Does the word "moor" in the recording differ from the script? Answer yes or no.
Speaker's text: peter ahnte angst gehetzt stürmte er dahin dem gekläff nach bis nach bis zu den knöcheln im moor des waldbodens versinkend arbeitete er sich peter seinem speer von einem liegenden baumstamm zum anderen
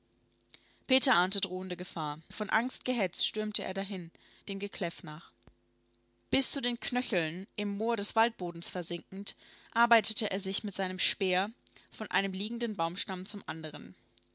no